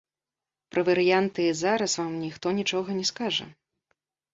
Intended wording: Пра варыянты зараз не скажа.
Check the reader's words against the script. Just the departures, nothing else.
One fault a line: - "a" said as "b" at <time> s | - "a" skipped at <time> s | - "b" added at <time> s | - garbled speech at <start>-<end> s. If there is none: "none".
- "вам ніхто нічога" added at 2.0 s